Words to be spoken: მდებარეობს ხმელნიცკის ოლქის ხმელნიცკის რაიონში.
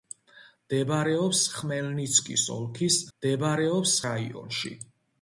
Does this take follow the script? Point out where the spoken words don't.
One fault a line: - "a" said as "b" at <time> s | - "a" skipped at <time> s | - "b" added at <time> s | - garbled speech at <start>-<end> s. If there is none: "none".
- "ხმელნიცკის" said as "მდებარეობს" at 3.1 s